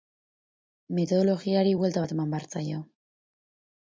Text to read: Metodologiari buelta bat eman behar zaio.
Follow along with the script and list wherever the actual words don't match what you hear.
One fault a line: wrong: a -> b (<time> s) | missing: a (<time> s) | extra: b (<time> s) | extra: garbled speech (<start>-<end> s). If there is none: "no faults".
no faults